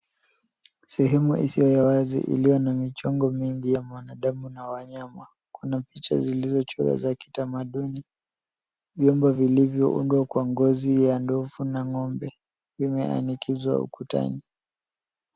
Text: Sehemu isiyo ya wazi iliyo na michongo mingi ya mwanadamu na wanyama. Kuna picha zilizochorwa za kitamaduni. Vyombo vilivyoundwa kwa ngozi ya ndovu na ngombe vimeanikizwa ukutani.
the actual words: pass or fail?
pass